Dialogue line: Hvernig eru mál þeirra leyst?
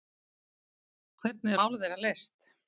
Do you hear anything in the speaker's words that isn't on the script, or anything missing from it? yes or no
yes